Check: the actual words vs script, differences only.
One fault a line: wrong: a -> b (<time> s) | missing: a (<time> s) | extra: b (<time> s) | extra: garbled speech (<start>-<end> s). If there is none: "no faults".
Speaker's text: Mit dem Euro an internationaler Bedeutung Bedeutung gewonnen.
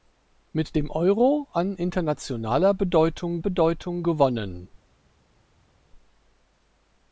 no faults